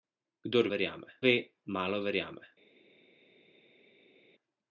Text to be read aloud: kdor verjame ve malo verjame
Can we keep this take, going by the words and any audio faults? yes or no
yes